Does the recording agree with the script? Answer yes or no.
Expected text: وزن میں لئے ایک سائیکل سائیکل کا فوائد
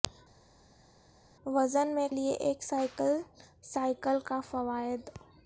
yes